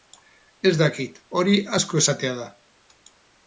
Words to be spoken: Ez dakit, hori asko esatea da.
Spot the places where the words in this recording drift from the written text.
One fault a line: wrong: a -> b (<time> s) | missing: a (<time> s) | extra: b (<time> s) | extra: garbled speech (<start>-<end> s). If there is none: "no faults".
no faults